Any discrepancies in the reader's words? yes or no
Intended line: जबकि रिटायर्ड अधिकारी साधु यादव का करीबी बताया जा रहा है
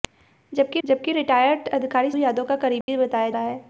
yes